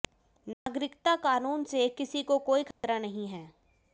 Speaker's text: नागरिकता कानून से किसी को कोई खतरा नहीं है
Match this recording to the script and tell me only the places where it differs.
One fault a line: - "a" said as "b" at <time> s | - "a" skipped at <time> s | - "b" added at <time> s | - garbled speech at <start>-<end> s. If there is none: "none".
none